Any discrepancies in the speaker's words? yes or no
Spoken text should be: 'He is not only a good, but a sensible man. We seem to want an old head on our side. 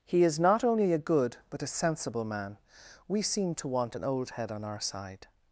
no